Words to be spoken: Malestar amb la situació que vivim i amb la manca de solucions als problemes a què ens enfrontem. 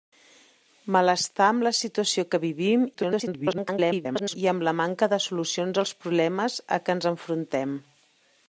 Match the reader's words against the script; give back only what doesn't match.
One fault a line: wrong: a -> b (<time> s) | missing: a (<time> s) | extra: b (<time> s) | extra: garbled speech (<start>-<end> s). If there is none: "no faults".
extra: garbled speech (2.9-4.4 s)